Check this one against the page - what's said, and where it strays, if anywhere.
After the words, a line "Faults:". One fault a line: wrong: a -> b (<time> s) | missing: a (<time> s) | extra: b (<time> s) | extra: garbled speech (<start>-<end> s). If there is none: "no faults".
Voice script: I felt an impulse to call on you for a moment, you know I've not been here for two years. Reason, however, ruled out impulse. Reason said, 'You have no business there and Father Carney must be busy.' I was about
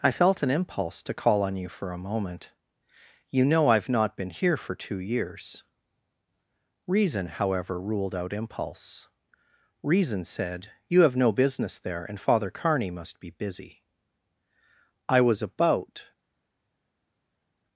I felt an impulse to call on you for a moment, you know I've not been here for two years. Reason, however, ruled out impulse. Reason said, 'You have no business there and Father Carney must be busy.' I was about
Faults:
no faults